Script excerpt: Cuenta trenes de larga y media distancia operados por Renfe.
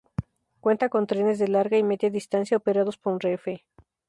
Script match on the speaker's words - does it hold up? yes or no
no